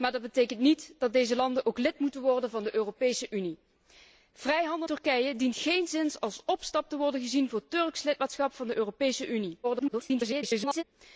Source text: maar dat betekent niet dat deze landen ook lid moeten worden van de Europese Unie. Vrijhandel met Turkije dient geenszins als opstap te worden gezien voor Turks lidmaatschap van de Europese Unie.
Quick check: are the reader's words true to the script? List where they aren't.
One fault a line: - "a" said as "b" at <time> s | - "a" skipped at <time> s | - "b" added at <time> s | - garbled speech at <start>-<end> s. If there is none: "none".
- "met" skipped at 4.9 s
- garbled speech at 9.6-10.8 s